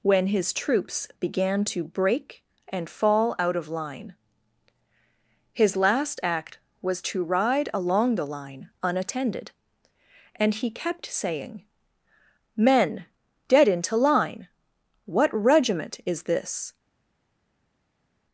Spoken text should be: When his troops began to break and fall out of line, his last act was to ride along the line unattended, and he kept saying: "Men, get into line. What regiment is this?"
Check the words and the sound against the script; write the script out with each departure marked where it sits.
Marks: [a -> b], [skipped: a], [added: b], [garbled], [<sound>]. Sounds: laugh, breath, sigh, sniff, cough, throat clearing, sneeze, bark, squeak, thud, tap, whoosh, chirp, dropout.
When his troops began to break and fall out of line, his last act was to ride along the line unattended, and he kept saying: "Men, [get -> dead] into line. What regiment is this?"